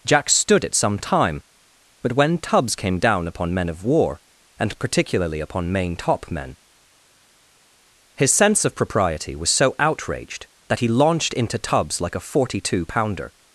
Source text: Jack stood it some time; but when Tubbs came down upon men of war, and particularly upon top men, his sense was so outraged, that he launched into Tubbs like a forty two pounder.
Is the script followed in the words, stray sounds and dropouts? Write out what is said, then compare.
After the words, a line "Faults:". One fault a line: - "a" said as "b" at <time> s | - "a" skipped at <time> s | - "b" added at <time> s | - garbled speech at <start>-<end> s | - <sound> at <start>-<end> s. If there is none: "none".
Jack stood it some time; but when Tubbs came down upon men of war, and particularly upon main top men, his sense of propriety was so outraged, that he launched into Tubbs like a forty two pounder.
Faults:
- "main" added at 5.7 s
- "of propriety" added at 8.6 s